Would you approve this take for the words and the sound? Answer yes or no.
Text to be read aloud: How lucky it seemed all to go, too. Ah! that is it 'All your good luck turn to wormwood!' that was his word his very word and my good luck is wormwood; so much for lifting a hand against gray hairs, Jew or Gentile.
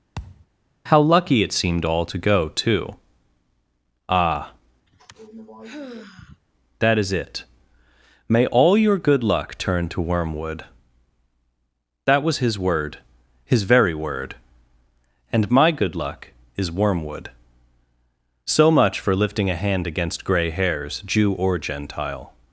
no